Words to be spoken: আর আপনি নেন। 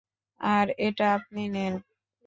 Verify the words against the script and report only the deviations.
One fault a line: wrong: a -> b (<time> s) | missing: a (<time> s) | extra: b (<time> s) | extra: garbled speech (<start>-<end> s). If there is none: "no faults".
extra: এটা (0.8 s)